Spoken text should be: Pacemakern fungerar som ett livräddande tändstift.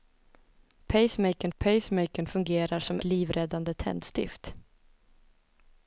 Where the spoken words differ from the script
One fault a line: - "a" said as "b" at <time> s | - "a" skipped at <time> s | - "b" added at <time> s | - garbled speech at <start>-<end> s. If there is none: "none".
- "pacemakern" added at 1.6 s
- "ett" skipped at 3.0 s